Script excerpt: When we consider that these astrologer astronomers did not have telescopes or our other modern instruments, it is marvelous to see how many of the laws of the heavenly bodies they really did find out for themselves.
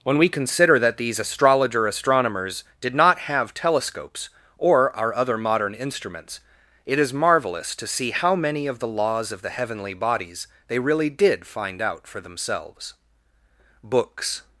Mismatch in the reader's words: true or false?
true